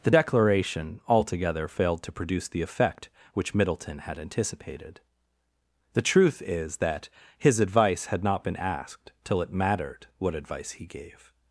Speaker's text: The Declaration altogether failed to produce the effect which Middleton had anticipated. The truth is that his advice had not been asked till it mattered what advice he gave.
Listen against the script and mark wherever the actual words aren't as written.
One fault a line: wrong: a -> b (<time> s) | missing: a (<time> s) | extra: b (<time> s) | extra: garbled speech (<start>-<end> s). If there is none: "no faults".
no faults